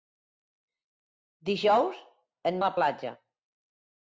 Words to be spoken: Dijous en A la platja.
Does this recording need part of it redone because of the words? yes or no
no